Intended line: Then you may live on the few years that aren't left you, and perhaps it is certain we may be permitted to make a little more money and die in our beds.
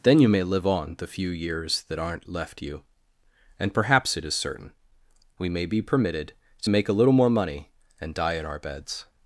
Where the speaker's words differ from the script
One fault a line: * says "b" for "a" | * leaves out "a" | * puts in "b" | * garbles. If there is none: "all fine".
all fine